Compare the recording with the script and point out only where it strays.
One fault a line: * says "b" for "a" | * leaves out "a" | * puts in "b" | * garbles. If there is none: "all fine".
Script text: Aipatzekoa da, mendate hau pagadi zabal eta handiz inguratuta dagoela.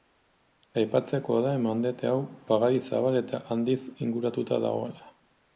all fine